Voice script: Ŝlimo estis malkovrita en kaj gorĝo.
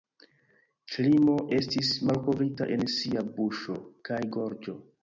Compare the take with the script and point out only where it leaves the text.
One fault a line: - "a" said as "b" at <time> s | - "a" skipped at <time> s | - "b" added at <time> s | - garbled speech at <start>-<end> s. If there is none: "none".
- "sia buŝo" added at 3.0 s